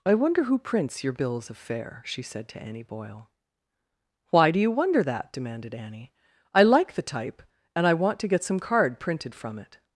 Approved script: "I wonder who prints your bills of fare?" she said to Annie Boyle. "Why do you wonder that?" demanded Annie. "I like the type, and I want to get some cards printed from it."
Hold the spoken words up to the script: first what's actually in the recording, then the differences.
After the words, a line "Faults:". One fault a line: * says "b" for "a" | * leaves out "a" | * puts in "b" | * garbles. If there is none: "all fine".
"I wonder who prints your bills of fare?" she said to Annie Boyle. "Why do you wonder that?" demanded Annie. "I like the type, and I want to get some card printed from it."
Faults:
* says "card" for "cards"